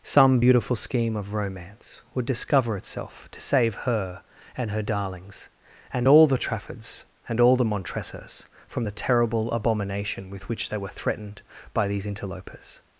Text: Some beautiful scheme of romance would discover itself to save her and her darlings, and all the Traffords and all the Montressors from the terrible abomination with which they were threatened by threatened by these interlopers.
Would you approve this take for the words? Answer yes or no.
no